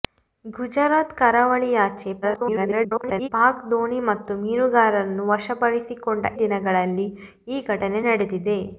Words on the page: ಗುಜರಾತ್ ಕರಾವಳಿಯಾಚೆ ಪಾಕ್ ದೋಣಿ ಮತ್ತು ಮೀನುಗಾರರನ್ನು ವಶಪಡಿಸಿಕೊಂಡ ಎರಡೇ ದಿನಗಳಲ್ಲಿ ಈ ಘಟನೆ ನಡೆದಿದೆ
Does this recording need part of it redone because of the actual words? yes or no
yes